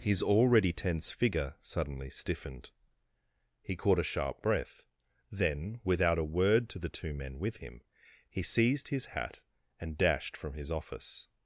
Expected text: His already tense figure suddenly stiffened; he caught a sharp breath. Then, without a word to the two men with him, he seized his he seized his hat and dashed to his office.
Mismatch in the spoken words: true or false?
true